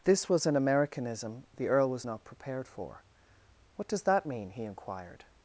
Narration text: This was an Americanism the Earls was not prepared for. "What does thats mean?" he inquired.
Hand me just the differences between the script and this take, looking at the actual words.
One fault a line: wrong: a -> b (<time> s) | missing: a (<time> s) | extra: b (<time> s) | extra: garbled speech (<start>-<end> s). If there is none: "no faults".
wrong: Earls -> Earl (1.7 s)
wrong: thats -> that (4.0 s)